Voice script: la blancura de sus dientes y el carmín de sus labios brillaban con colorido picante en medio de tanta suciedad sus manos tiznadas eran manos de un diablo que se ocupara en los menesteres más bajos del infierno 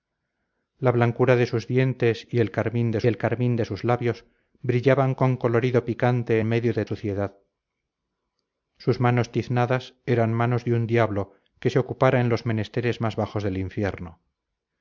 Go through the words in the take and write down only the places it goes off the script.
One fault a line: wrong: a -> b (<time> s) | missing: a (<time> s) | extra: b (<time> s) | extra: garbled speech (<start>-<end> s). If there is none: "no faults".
extra: el carmín de (3.1 s)
missing: en (6.4 s)
missing: tanta (6.9 s)